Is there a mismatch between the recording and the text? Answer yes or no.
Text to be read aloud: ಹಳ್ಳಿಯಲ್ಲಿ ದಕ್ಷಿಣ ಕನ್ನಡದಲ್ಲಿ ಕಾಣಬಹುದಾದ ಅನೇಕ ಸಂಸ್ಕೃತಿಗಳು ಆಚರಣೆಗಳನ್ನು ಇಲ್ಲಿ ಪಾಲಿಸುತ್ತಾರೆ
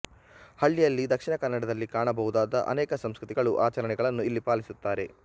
no